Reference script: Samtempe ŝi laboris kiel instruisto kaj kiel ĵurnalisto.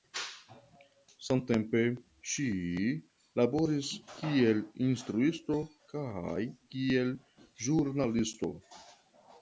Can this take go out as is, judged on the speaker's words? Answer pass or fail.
pass